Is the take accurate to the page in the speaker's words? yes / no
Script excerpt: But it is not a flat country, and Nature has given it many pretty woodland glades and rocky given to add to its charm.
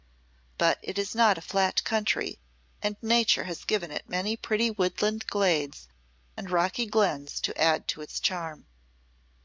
no